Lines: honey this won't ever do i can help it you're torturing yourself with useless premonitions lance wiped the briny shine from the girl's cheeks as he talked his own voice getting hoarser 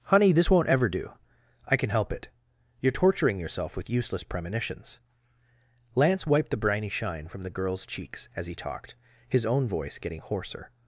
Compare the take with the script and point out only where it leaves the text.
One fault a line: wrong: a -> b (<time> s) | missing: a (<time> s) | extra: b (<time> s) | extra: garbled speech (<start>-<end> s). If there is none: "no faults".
no faults